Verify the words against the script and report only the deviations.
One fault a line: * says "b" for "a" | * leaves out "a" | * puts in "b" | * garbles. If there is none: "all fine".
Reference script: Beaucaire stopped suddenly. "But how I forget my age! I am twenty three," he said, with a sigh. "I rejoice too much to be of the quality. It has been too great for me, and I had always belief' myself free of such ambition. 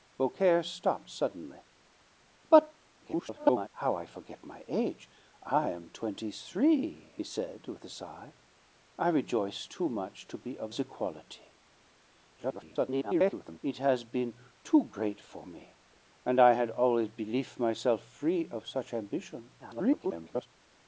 * garbles
* garbles
* garbles